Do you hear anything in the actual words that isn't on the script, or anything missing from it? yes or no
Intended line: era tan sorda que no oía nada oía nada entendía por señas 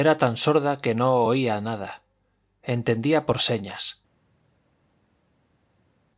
yes